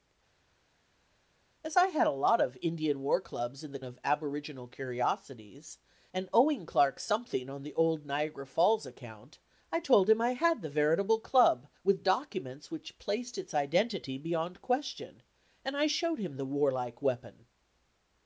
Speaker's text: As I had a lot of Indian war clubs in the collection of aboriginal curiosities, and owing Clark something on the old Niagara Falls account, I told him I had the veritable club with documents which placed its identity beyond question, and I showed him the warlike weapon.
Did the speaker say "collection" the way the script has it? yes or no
no